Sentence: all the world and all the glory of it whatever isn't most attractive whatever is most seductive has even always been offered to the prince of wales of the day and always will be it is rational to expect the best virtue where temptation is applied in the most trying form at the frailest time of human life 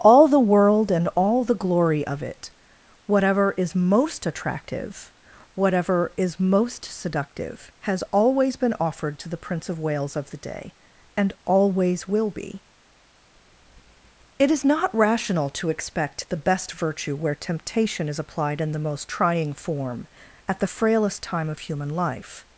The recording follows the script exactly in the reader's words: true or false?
false